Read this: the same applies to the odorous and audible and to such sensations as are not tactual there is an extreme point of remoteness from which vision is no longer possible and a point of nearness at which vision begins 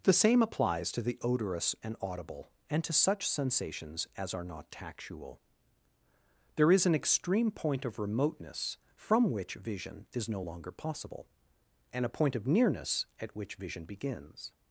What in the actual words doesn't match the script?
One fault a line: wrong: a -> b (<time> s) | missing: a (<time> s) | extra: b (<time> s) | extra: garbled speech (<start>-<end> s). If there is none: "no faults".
no faults